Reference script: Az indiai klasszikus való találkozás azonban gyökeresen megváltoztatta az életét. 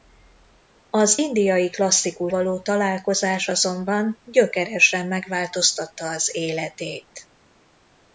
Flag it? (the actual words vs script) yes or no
no